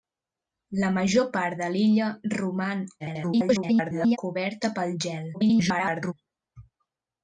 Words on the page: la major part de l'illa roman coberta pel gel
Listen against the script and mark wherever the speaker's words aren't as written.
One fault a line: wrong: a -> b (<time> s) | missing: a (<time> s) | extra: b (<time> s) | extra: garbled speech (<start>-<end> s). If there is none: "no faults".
extra: garbled speech (3.0-4.2 s)
extra: garbled speech (5.3-6.1 s)